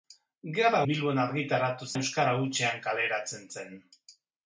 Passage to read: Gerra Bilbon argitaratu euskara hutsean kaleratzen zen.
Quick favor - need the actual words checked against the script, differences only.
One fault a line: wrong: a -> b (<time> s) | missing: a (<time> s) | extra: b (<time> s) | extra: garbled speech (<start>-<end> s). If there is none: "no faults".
no faults